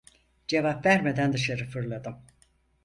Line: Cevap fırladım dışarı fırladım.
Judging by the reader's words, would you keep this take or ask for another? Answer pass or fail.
fail